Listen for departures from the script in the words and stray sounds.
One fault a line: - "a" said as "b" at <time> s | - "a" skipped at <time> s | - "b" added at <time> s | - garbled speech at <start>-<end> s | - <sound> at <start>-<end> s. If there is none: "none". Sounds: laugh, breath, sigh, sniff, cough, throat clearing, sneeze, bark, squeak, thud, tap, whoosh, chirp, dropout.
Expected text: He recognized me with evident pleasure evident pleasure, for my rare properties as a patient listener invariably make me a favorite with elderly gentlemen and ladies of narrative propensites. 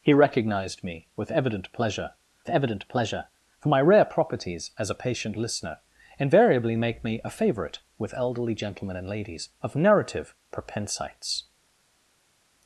none